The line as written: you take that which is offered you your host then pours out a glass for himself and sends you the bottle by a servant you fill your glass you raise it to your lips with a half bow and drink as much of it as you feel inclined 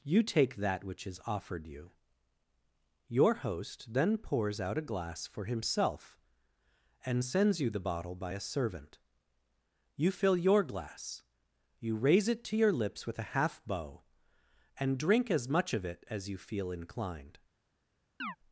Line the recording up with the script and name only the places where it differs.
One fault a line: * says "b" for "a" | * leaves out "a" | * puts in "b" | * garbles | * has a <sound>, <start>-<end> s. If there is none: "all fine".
* has a chirp, 18.2-18.4 s